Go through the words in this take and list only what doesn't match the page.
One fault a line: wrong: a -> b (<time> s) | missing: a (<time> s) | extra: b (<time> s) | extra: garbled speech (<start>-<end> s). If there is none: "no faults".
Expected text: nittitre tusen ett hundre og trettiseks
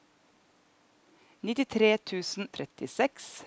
missing: ett hundre og (2.5 s)